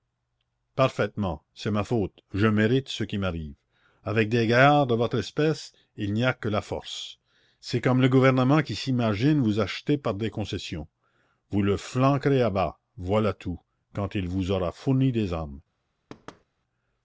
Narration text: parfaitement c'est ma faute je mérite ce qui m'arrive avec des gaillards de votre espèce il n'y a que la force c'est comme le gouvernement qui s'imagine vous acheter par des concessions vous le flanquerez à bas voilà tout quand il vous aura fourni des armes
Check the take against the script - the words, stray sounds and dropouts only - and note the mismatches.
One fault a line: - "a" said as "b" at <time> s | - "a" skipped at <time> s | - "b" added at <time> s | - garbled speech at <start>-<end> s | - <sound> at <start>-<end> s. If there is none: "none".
- thud at 16.1-16.4 s